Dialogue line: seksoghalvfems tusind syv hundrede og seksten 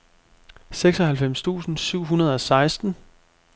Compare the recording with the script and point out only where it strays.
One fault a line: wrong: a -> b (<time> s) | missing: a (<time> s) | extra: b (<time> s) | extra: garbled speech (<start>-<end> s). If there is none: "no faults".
no faults